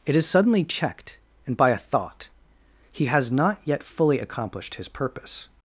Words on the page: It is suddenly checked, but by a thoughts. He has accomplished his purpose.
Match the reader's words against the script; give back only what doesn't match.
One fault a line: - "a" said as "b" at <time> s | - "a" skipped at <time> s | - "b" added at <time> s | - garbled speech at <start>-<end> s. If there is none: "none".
- "but" said as "and" at 1.4 s
- "thoughts" said as "thought" at 1.8 s
- "not yet fully" added at 3.3 s